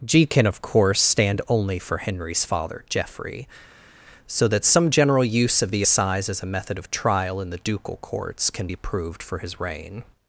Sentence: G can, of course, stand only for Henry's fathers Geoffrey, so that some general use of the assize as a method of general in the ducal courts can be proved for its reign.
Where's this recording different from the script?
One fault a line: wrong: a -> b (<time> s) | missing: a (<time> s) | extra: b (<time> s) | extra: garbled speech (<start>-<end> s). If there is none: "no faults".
wrong: fathers -> father (2.4 s)
wrong: general -> trial (6.9 s)
wrong: its -> his (9.4 s)